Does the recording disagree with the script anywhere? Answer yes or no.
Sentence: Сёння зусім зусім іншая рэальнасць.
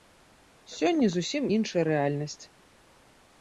yes